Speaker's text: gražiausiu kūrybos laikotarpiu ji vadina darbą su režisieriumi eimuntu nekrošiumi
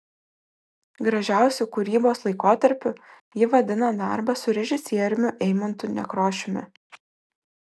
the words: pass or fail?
pass